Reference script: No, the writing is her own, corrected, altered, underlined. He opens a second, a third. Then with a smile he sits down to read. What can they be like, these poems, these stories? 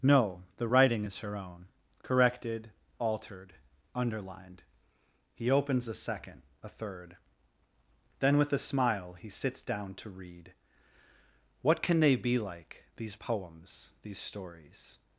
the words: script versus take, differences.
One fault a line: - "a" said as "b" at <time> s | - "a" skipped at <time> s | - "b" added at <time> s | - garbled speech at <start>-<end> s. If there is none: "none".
none